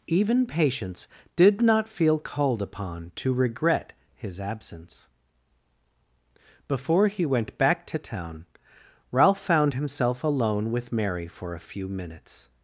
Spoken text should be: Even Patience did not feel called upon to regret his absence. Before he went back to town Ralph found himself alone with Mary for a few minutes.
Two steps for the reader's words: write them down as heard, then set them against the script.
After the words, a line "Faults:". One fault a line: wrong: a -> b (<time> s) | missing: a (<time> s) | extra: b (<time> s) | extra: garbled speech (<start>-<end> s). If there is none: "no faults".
Even Patience did not feel called upon to regret his absence. Before he went back to town Ralph found himself alone with Mary for a few minutes.
Faults:
no faults